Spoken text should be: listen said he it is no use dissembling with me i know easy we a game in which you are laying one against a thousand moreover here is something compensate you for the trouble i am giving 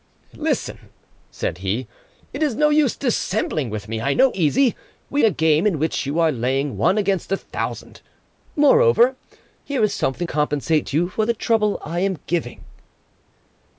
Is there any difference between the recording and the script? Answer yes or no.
no